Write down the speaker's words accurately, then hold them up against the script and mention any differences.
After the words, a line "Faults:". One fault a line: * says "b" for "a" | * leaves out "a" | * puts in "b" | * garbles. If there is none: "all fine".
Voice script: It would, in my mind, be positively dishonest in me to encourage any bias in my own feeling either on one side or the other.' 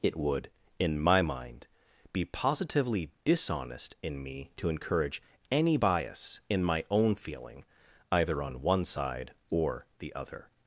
It would, in my mind, be positively dishonest in me to encourage any bias in my own feeling either on one side or the other.'
Faults:
all fine